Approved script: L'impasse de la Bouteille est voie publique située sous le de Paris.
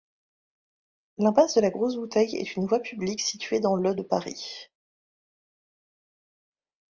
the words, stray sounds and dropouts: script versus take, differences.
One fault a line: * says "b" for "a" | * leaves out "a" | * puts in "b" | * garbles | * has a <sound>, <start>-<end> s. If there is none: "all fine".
* puts in "Grosse"
* puts in "une"
* says "dans" for "sous"